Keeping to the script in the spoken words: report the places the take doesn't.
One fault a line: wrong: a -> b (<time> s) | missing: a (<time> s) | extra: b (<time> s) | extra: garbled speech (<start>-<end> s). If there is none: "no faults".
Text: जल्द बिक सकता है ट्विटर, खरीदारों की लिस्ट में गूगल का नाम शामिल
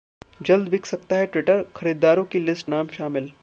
missing: में गूगल का (2.7 s)